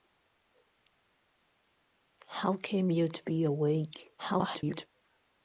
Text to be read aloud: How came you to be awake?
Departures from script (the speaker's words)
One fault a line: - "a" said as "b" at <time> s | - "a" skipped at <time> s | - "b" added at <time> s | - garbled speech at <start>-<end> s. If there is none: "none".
- garbled speech at 4.2-4.9 s